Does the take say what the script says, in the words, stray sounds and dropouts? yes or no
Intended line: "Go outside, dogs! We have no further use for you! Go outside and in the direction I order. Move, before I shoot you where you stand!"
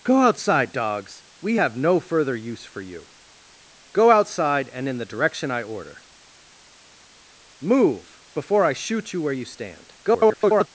no